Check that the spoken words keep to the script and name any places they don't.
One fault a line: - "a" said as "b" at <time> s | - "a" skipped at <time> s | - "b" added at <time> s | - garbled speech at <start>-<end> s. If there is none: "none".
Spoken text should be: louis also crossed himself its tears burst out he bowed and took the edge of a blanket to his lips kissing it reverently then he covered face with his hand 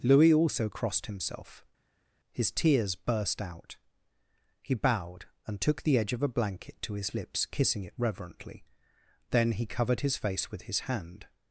- "its" said as "his" at 2.3 s
- "his" added at 10.0 s